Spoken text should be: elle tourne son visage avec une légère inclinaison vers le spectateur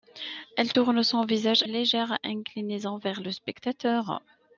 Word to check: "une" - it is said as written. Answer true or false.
false